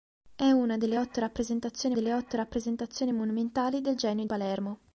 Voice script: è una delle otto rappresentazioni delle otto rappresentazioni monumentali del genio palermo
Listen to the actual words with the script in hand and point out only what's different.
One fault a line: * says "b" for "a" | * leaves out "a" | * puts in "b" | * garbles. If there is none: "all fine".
all fine